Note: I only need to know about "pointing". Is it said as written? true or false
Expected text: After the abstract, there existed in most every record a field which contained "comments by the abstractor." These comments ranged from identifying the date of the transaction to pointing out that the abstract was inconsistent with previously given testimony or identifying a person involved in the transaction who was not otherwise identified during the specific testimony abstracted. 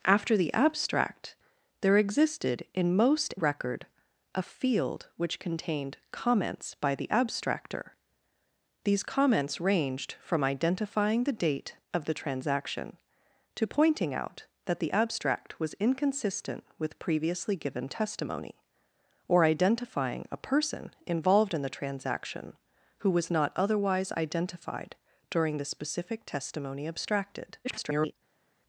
true